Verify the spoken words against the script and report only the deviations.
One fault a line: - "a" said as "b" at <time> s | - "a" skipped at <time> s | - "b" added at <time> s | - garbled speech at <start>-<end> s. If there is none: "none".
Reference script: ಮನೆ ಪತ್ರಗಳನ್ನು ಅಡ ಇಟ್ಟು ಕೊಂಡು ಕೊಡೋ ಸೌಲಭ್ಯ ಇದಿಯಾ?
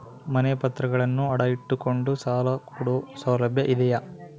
- "ಸಾಲ" added at 2.2 s